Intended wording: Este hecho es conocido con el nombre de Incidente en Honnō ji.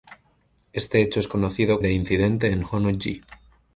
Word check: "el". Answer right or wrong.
wrong